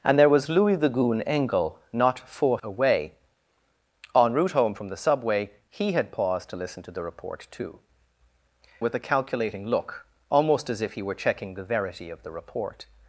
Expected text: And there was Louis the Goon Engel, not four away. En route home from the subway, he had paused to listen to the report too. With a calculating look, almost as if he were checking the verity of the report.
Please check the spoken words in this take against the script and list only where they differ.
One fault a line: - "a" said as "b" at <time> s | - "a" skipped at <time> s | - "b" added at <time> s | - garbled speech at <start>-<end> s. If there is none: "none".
none